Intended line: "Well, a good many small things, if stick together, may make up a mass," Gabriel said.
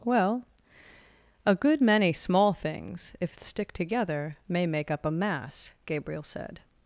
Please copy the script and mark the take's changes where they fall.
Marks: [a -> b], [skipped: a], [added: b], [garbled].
"Well, a good many small things, if stick together, may make up a mass," Gabriel said.